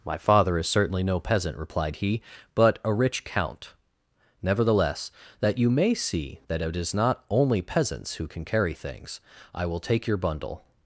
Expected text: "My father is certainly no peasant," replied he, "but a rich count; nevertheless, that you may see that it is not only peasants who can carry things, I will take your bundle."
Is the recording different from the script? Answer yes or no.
no